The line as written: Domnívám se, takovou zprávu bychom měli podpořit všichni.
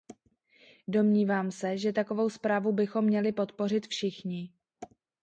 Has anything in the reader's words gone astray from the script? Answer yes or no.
yes